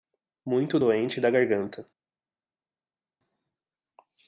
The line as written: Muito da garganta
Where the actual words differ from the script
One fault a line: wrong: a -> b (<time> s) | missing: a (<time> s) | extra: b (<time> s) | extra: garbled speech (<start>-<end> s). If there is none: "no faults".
extra: doente (0.8 s)